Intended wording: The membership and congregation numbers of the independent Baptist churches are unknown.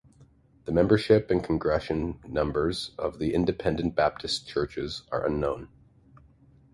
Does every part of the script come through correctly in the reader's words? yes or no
yes